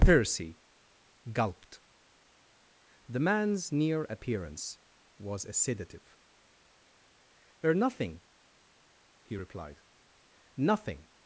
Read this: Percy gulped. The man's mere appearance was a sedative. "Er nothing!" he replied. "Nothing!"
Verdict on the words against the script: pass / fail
fail